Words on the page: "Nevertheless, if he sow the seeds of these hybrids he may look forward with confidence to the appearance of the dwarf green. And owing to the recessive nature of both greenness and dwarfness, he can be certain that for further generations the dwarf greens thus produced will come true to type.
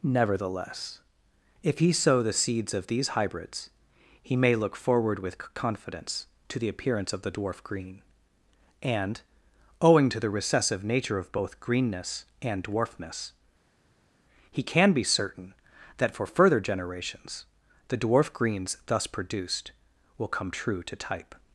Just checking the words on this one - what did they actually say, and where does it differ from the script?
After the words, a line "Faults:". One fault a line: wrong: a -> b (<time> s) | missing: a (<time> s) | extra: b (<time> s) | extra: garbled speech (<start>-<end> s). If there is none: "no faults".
"Nevertheless, if he sow the seeds of these hybrids he may look forward with confidence to the appearance of the dwarf green. And owing to the recessive nature of both greenness and dwarfness, he can be certain that for further generations the dwarf greens thus produced will come true to type.
Faults:
no faults